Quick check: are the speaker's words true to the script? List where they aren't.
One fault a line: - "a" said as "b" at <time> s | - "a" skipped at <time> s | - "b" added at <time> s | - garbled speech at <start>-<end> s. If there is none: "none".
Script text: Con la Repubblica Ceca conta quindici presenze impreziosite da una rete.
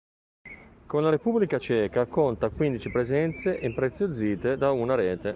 none